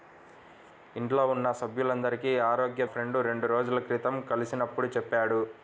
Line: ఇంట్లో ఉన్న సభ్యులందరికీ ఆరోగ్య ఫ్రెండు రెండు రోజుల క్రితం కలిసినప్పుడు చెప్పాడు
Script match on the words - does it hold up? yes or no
yes